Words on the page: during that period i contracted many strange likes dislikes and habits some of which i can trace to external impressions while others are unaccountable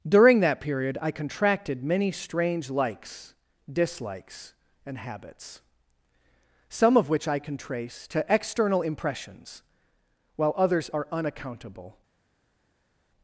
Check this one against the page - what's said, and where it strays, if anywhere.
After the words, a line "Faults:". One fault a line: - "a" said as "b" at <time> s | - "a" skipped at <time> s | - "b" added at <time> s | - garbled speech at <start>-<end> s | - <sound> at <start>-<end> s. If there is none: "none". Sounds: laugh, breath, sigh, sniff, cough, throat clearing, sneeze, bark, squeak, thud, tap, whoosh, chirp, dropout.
during that period i contracted many strange likes dislikes and habits some of which i can trace to external impressions while others are unaccountable
Faults:
none